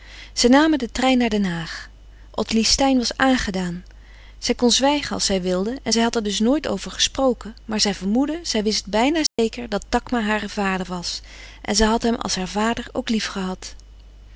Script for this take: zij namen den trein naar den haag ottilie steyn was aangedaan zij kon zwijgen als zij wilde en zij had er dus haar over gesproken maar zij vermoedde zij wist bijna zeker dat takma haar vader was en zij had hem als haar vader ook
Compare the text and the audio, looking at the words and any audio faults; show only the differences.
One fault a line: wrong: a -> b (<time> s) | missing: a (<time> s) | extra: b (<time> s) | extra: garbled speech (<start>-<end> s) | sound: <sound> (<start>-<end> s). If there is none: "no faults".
wrong: haar -> nooit (6.4 s)
sound: dropout (9.3-9.4 s)